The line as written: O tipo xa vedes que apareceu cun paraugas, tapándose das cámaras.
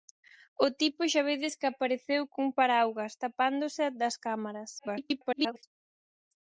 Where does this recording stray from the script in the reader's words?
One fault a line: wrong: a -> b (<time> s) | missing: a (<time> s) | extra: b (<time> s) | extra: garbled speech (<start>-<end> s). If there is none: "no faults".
extra: garbled speech (4.8-5.6 s)